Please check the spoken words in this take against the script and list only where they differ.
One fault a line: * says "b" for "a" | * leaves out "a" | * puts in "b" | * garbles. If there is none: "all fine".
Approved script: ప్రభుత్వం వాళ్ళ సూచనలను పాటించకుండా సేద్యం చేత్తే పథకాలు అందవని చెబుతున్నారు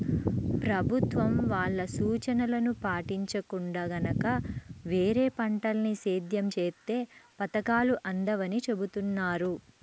* puts in "గనక వేరే పంటల్ని"